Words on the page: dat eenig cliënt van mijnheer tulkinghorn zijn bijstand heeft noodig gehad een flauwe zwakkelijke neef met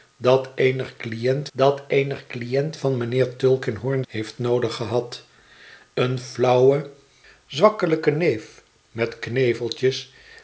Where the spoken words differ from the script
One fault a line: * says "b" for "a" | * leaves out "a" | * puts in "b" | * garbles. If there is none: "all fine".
* puts in "dat eenig cliënt"
* leaves out "zijn bijstand"